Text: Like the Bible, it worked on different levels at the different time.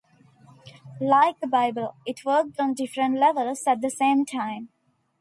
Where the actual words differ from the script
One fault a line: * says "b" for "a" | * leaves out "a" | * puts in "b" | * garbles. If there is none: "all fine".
* says "same" for "different"